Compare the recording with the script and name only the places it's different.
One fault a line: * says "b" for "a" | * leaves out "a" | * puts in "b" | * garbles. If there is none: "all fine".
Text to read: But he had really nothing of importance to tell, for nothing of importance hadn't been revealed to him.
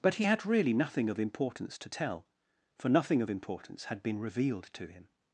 * says "had" for "hadn't"